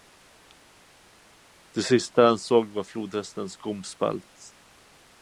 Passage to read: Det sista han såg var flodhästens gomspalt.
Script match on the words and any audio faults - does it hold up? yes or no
yes